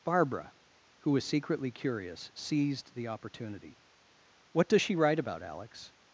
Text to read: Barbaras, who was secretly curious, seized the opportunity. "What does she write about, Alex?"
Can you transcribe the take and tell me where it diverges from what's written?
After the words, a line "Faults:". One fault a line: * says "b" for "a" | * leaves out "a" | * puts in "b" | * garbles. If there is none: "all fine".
Barbara, who was secretly curious, seized the opportunity. "What does she write about, Alex?"
Faults:
* says "Barbara" for "Barbaras"